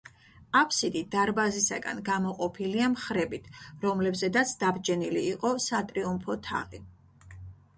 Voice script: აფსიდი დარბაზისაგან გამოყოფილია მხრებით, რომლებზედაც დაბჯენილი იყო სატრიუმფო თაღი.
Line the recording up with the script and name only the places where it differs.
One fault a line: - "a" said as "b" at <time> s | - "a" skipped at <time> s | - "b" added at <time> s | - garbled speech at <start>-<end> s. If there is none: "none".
none